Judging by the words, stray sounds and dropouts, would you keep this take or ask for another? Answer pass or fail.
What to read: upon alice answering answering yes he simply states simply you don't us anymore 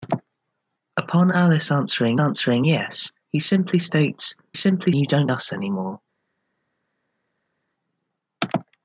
pass